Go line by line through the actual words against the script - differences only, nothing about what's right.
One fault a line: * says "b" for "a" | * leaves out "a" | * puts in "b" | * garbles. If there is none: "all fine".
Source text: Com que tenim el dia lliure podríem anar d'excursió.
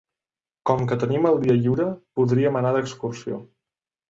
all fine